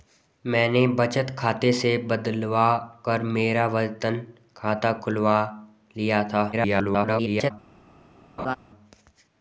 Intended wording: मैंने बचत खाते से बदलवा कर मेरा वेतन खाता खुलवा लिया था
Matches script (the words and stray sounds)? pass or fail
fail